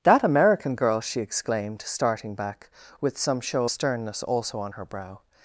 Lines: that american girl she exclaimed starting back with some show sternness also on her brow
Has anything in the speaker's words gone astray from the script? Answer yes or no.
no